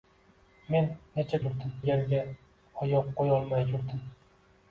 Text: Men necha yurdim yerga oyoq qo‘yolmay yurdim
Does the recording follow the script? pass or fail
pass